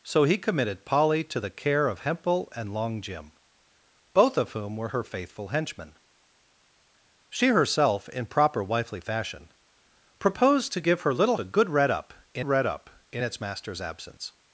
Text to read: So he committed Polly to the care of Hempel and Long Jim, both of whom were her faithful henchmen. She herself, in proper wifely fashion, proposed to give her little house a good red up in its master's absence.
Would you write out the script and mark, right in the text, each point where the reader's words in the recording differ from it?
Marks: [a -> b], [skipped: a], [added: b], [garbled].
So he committed Polly to the care of Hempel and Long Jim, both of whom were her faithful henchmen. She herself, in proper wifely fashion, proposed to give her little [skipped: house] a good red up in [added: red up in] its master's absence.